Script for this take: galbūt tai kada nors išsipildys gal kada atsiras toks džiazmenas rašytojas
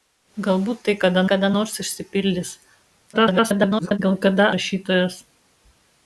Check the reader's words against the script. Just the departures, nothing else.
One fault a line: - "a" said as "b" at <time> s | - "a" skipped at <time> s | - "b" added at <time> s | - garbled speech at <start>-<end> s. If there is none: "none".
- "kada" added at 1.3 s
- garbled speech at 3.1-4.0 s
- "atsiras toks džiazmenas" skipped at 4.5 s